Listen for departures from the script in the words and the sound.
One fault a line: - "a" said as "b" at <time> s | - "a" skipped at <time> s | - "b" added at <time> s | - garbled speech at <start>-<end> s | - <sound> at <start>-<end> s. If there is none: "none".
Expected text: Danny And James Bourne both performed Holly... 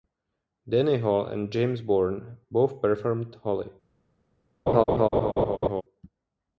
- "Hall" added at 1.0 s
- laugh at 4.7-5.8 s